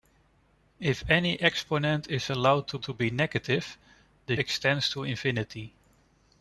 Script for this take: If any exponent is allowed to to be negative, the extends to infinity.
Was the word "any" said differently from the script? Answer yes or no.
no